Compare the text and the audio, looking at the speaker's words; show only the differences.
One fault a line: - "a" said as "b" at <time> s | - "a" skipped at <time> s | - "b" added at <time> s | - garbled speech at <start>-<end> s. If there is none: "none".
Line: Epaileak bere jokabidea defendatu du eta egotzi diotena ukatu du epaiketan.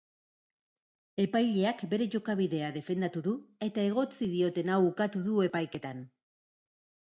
none